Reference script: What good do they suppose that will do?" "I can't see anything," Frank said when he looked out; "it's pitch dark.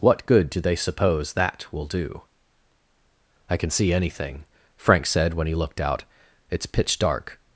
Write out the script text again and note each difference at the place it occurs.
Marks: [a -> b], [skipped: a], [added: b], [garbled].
What good do they suppose that will do?" "I [can't -> can] see anything," Frank said when he looked out; "it's pitch dark.